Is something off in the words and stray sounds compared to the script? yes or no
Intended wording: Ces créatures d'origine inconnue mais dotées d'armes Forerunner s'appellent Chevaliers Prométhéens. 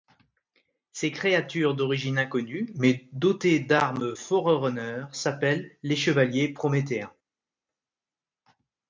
yes